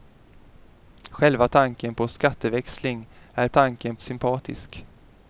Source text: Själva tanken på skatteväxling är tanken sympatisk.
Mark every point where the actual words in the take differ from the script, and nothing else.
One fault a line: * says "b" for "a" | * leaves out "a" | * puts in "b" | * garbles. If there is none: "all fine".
all fine